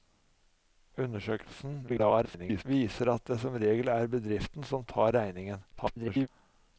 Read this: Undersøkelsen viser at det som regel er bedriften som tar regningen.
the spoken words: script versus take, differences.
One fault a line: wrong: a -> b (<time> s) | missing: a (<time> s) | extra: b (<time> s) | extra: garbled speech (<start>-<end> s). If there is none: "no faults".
extra: garbled speech (1.9-2.6 s)
extra: garbled speech (5.7-6.3 s)